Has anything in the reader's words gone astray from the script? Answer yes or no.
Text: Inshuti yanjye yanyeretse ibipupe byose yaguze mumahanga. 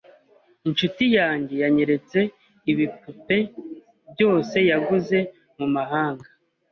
no